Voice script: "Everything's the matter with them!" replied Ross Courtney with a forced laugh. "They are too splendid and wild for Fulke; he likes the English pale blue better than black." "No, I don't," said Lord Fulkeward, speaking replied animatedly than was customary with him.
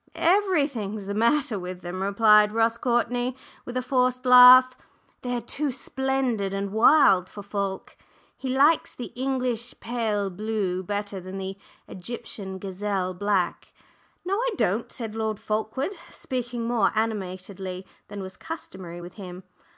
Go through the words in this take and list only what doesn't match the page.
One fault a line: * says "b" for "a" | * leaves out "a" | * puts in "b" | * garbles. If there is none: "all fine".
* puts in "the Egyptian gazelle"
* says "more" for "replied"